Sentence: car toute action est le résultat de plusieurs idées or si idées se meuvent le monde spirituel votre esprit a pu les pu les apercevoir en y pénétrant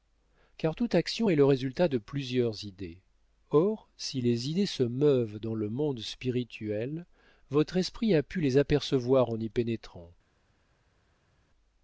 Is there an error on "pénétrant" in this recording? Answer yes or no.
no